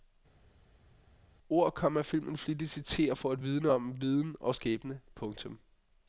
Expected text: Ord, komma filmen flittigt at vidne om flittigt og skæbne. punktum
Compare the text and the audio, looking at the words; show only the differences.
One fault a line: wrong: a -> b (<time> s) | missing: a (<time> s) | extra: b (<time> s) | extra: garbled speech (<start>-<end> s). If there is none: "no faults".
extra: citerer for (2.7 s)
wrong: flittigt -> viden (4.0 s)